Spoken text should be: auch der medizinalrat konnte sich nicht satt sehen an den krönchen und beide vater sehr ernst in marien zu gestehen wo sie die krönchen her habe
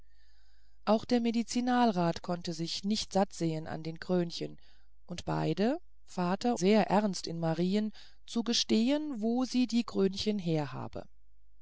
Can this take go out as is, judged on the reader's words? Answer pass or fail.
pass